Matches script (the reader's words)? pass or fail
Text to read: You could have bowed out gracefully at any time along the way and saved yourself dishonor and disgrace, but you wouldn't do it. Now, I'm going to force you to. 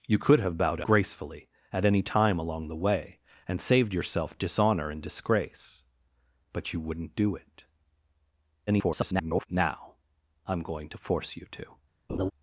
fail